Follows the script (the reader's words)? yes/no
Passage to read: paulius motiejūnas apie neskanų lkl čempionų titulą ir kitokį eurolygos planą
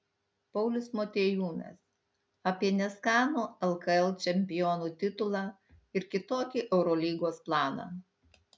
yes